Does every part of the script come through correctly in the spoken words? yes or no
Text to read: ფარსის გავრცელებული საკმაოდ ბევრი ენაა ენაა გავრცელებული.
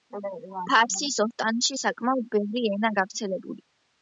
no